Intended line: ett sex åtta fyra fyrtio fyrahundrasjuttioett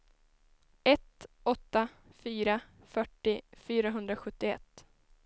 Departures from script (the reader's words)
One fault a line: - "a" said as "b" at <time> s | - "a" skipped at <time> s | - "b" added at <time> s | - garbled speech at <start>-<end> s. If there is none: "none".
- "sex" skipped at 1.2 s